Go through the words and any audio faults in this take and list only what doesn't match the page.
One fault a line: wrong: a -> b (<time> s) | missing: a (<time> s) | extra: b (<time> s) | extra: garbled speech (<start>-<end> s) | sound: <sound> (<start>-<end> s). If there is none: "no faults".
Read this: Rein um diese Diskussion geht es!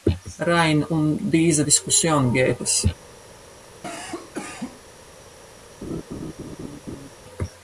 sound: cough (3.8-4.8 s)
sound: laugh (5.8-7.1 s)